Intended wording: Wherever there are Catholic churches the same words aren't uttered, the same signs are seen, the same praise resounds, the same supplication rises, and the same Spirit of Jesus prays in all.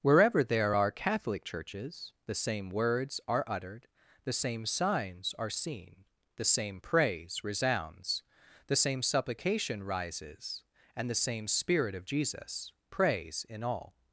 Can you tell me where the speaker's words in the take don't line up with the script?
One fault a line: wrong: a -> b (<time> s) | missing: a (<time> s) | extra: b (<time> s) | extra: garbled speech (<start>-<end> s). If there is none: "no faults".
wrong: aren't -> are (3.3 s)